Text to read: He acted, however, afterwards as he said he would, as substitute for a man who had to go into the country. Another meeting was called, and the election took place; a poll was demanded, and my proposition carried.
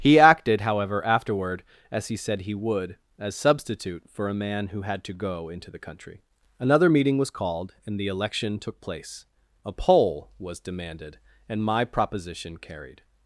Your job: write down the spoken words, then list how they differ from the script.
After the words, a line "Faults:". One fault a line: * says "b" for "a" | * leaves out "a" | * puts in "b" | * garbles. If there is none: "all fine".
He acted, however, afterward as he said he would, as substitute for a man who had to go into the country. Another meeting was called, and the election took place; a poll was demanded, and my proposition carried.
Faults:
* says "afterward" for "afterwards"